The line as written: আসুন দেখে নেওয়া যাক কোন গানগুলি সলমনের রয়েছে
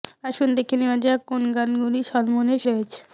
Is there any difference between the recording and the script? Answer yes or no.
no